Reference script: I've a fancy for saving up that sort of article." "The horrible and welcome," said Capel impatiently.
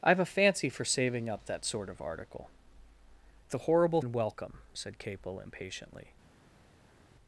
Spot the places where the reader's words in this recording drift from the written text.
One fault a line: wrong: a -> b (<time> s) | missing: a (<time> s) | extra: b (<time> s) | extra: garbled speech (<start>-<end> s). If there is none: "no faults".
no faults